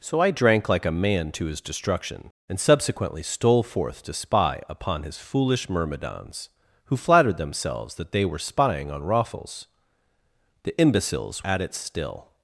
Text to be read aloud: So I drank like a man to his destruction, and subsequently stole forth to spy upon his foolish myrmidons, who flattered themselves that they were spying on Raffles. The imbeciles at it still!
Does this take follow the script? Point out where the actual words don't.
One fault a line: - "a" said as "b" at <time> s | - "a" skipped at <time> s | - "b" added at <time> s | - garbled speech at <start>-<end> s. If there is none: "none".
none